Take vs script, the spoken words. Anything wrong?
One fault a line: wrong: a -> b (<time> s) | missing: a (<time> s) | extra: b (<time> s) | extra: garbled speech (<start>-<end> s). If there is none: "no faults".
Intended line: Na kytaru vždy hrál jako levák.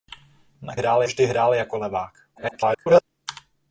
wrong: kytaru -> hrál (0.7 s)
extra: garbled speech (2.4-3.0 s)